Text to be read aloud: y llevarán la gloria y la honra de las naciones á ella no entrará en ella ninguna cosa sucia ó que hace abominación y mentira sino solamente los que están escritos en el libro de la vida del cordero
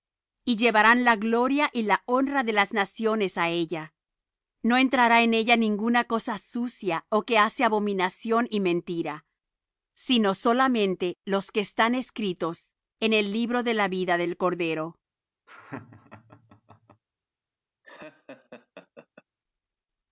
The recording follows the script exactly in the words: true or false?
true